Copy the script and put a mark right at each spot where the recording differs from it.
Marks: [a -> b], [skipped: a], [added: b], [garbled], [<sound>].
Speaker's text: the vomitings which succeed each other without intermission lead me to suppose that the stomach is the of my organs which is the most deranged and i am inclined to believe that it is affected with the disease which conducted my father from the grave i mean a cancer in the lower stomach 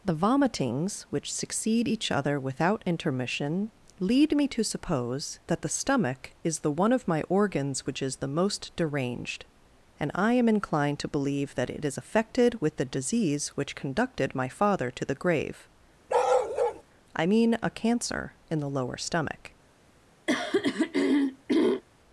the vomitings which succeed each other without intermission lead me to suppose that the stomach is the [added: one] of my organs which is the most deranged and i am inclined to believe that it is affected with the disease which conducted my father [from -> to] the grave [bark] i mean a cancer in the lower stomach [throat clearing]